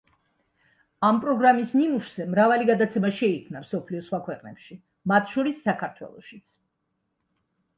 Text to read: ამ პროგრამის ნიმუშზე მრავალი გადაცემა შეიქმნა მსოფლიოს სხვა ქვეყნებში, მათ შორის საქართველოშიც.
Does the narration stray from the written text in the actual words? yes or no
no